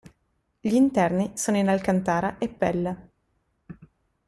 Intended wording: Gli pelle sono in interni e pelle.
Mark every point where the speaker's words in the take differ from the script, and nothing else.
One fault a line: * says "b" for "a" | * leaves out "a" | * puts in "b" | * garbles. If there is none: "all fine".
* says "interni" for "pelle"
* says "alcantara" for "interni"